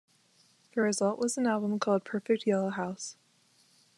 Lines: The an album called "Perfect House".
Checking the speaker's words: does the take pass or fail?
fail